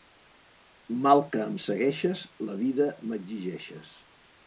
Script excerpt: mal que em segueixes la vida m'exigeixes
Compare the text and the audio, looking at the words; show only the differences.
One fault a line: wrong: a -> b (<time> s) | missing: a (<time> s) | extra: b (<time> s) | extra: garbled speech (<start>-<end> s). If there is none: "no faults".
no faults